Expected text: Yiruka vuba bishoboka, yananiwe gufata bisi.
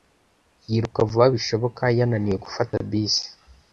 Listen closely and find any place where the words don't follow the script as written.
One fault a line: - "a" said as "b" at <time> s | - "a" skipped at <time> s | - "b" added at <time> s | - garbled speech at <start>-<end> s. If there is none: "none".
none